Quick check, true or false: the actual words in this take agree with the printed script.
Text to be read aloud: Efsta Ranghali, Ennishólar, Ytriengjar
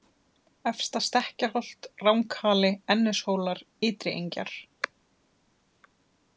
false